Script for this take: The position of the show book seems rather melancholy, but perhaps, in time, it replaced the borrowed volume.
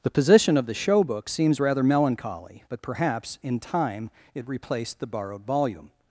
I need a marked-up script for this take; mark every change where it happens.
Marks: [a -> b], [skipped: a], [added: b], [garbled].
The position of the show book seems rather melancholy, but perhaps, in time, it replaced the borrowed volume.